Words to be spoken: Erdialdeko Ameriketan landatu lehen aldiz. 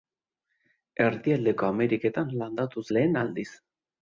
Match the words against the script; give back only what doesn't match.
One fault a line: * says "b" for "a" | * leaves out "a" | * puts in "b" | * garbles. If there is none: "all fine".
all fine